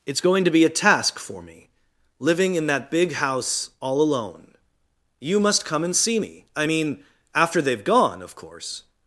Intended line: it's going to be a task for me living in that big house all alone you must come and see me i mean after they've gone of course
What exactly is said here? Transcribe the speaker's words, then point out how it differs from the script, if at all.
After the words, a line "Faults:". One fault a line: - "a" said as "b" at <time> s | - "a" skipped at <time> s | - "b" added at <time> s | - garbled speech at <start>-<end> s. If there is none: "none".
it's going to be a task for me living in that big house all alone you must come and see me i mean after they've gone of course
Faults:
none